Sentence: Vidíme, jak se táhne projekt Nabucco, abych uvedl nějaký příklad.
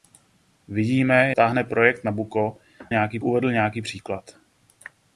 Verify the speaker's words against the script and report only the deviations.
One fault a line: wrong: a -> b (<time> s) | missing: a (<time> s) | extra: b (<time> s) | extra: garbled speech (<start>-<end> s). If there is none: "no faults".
missing: jak se (1.3 s)
wrong: abych -> nějaký (2.9 s)